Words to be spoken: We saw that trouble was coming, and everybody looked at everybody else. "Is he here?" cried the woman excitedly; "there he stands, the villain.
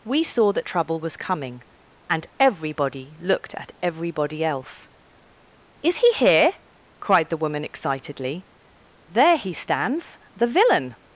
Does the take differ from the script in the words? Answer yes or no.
no